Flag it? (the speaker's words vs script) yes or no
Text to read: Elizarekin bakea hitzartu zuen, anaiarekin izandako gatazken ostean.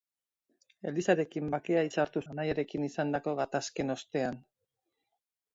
yes